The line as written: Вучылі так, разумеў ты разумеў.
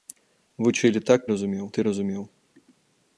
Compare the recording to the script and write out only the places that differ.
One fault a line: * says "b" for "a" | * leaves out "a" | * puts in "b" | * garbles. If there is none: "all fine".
all fine